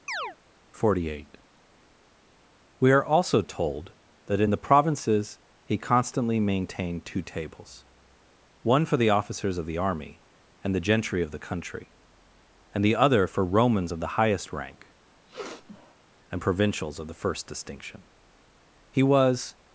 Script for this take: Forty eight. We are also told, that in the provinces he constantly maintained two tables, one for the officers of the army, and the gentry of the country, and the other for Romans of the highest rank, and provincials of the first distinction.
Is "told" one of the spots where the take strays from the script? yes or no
no